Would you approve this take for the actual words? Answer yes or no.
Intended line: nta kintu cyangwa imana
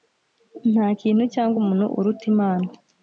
no